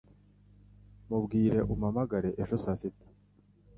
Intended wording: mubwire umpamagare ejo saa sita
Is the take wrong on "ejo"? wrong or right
right